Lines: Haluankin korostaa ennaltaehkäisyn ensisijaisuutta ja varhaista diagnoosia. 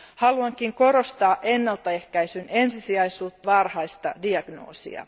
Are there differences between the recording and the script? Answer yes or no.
yes